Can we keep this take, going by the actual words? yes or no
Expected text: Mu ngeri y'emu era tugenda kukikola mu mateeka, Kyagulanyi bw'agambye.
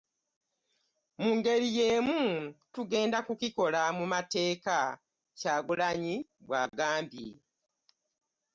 no